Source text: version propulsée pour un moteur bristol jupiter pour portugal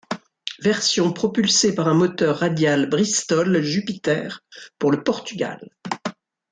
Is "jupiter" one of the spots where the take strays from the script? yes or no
no